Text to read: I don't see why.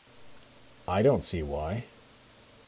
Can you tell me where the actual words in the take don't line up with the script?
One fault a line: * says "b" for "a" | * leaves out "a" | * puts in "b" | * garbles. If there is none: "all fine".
all fine